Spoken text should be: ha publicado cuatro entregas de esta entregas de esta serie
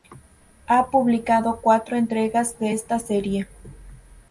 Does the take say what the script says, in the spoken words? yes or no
no